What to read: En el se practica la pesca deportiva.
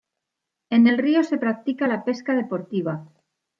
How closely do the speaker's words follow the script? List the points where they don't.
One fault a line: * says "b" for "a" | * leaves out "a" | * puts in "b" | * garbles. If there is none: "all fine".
* puts in "río"